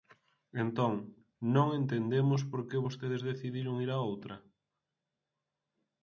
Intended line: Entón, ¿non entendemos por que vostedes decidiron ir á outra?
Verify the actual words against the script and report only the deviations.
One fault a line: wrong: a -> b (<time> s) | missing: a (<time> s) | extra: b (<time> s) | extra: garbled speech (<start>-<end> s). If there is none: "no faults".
no faults